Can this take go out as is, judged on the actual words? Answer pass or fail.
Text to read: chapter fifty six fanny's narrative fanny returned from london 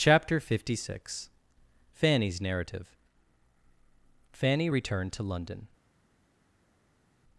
fail